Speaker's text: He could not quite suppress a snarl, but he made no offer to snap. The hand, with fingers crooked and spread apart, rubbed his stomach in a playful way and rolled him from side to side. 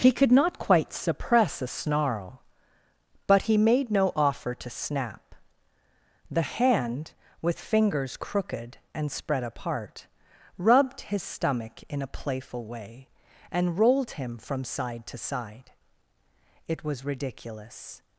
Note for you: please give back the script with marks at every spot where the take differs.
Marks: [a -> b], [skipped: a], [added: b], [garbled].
He could not quite suppress a snarl, but he made no offer to snap. The hand, with fingers crooked and spread apart, rubbed his stomach in a playful way and rolled him from side to side. [added: It was ridiculous]